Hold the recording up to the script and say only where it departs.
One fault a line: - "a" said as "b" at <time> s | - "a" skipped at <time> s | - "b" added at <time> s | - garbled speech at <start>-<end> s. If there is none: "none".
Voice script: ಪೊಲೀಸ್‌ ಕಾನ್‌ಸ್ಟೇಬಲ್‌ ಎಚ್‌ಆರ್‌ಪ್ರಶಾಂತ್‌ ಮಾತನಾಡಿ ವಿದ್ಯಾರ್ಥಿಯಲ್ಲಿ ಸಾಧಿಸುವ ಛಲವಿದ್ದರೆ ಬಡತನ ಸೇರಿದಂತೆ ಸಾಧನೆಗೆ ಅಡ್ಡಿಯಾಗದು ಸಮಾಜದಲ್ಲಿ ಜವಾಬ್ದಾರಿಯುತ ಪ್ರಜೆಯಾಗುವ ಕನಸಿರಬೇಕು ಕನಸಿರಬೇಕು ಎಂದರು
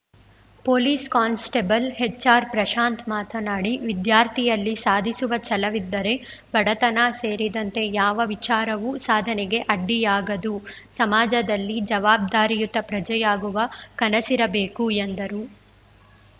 - "ಯಾವ ವಿಚಾರವೂ" added at 7.9 s
- "ಕನಸಿರಬೇಕು" skipped at 14.9 s